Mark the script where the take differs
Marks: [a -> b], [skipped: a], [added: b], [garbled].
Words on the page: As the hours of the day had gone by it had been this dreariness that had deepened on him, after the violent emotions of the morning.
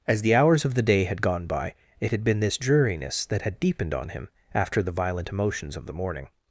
As the hours of the day had gone by it had been this dreariness that had deepened on him, after the violent emotions of the morning.